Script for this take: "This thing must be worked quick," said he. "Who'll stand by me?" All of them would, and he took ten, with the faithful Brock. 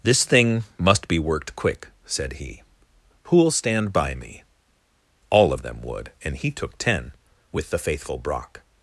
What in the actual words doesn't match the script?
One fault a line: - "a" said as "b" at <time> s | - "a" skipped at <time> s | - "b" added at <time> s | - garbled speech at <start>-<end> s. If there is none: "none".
none